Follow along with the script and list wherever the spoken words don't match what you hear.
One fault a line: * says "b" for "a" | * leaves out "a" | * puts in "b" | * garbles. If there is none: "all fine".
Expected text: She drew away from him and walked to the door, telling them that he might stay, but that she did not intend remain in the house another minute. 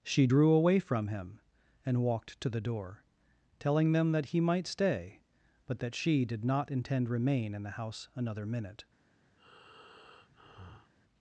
all fine